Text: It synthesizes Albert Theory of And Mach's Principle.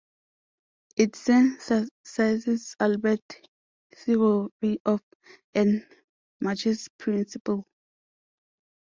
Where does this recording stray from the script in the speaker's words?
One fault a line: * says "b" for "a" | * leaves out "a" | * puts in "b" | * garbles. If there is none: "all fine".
all fine